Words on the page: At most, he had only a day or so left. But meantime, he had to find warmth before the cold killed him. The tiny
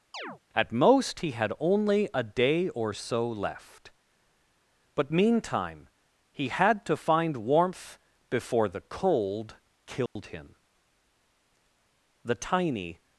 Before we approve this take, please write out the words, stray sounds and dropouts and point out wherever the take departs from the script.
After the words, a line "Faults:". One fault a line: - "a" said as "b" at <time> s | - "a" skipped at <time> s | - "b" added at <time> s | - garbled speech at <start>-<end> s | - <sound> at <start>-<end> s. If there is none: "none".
At most, he had only a day or so left. But meantime, he had to find warmth before the cold killed him. The tiny
Faults:
- chirp at 0.1-0.4 s
- dropout at 10.1-10.2 s